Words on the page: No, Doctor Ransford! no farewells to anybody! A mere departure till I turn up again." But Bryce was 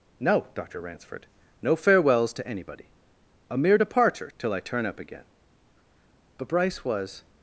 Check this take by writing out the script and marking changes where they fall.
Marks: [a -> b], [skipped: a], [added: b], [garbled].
No, Doctor Ransford! no farewells to anybody! A mere departure till I turn up again." But Bryce was